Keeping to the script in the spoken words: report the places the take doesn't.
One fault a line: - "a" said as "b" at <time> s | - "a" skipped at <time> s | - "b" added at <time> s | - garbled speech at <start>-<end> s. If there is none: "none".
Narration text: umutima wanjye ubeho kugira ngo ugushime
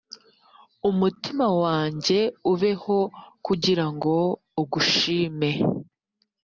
none